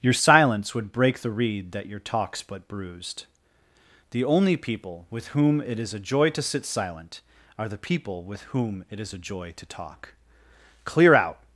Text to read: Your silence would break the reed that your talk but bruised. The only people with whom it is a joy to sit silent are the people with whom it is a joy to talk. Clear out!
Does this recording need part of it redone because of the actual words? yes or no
yes